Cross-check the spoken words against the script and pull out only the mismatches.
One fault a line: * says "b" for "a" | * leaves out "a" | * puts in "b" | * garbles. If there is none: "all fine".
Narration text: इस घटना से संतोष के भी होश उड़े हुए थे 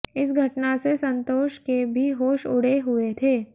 all fine